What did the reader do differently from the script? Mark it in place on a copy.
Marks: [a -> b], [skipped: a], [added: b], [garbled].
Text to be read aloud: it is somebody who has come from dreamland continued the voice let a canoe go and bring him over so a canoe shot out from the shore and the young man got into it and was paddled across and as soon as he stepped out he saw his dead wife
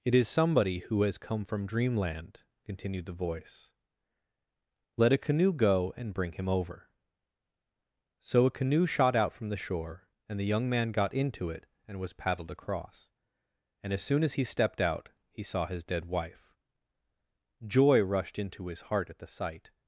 it is somebody who has come from dreamland continued the voice let a canoe go and bring him over so a canoe shot out from the shore and the young man got into it and was paddled across and as soon as he stepped out he saw his dead wife [added: joy rushed into his heart at the sight]